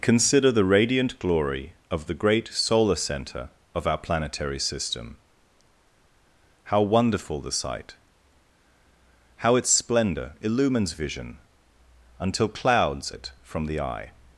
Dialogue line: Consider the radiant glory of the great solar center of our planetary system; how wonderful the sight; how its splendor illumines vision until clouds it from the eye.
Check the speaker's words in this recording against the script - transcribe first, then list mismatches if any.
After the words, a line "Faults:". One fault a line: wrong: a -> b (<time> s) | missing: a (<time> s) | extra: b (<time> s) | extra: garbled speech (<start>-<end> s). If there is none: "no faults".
Consider the radiant glory of the great solar center of our planetary system; how wonderful the sight; how its splendor illumines vision until clouds it from the eye.
Faults:
no faults